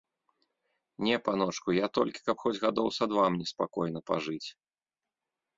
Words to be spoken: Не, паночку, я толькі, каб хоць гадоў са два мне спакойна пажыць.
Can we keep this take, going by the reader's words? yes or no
yes